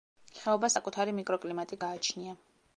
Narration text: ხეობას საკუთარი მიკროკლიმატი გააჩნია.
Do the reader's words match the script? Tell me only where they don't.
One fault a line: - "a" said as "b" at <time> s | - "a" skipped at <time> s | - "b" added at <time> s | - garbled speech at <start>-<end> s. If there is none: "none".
none